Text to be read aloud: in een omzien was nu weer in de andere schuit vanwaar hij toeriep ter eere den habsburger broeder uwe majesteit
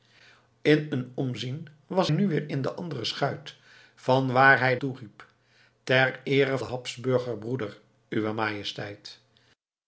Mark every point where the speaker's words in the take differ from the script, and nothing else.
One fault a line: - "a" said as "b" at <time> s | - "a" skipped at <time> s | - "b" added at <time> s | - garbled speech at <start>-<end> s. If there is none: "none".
none